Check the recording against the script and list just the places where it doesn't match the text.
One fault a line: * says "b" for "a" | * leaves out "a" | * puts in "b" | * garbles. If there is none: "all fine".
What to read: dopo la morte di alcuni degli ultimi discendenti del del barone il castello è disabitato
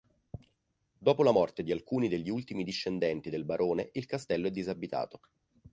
* leaves out "del"